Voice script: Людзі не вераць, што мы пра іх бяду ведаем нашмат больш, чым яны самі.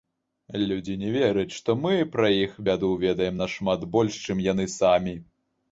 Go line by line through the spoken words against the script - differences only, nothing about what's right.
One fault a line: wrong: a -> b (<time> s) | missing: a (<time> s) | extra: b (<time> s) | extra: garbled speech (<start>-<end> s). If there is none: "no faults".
no faults